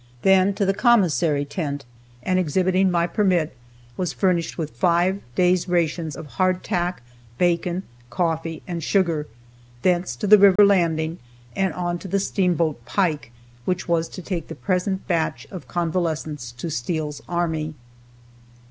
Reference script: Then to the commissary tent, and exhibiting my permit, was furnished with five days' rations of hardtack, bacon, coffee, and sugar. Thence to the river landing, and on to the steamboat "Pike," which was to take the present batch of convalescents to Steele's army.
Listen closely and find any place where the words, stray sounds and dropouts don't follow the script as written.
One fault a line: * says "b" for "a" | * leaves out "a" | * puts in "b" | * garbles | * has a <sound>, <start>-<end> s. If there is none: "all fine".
* has a dropout, 10.6-10.6 s